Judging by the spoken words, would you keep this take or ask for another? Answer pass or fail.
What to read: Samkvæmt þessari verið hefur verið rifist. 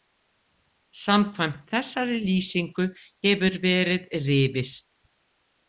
fail